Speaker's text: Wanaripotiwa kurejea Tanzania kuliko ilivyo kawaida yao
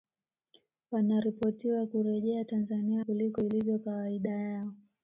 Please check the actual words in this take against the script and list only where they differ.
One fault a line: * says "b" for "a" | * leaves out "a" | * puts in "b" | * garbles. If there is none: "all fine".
all fine